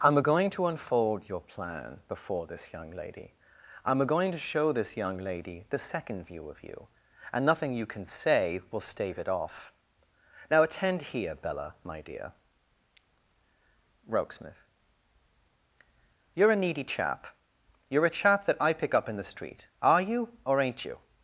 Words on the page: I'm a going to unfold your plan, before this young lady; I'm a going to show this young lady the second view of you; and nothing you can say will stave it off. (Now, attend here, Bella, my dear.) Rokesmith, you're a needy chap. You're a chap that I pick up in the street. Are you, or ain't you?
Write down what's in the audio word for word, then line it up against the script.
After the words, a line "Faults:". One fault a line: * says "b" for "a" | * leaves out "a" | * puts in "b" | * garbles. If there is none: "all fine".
I'm going to unfold your plan, before this young lady; I'm going to show this young lady the second view of you; and nothing you can say will stave it off. (Now, attend here, Bella, my dear.) Rokesmith, you're a needy chap. You're a chap that I pick up in the street. Are you, or ain't you?
Faults:
* leaves out "a"
* leaves out "a"